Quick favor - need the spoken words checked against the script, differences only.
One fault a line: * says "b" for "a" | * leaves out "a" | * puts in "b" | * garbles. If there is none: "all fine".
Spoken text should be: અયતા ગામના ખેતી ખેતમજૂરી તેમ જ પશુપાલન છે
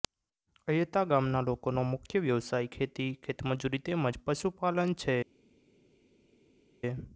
* puts in "લોકોનો મુખ્ય વ્યવસાય"